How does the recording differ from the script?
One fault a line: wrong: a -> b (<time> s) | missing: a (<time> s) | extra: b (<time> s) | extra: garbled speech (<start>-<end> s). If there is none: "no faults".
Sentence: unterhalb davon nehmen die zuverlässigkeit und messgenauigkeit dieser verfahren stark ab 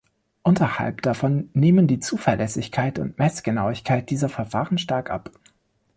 no faults